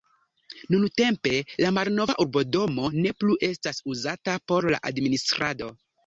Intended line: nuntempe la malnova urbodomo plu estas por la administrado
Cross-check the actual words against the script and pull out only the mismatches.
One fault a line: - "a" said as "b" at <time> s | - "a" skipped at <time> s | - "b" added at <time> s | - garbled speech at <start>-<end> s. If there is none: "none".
- "ne" added at 3.0 s
- "uzata" added at 3.9 s